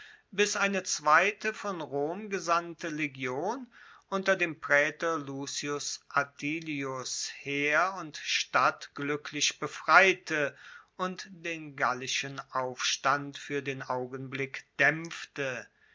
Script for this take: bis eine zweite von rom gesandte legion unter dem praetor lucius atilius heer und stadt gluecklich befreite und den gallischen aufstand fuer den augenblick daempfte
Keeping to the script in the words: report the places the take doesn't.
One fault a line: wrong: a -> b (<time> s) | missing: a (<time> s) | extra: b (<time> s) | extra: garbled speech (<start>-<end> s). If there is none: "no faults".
no faults